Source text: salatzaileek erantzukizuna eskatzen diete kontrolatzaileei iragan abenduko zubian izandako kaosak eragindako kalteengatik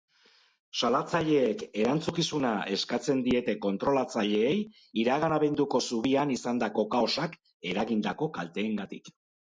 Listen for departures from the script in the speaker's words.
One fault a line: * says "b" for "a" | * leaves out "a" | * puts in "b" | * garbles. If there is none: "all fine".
all fine